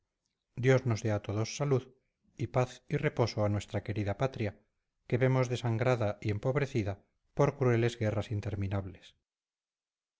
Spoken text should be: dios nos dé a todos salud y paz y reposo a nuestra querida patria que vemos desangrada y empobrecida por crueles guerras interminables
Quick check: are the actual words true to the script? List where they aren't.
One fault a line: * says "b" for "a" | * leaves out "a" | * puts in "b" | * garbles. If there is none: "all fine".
all fine